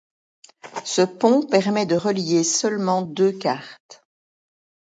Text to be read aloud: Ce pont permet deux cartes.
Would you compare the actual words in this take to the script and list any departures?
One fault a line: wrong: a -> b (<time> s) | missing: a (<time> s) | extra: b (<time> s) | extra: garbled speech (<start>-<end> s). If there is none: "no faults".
extra: de relier seulement (1.8 s)